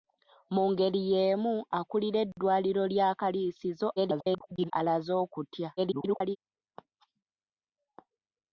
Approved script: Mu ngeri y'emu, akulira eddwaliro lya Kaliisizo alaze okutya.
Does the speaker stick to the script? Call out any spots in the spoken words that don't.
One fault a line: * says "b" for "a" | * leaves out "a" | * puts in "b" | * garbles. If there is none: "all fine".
* garbles
* garbles